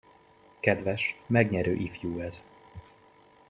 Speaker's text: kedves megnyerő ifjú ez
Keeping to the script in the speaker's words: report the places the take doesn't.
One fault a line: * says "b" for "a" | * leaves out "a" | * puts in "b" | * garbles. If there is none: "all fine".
all fine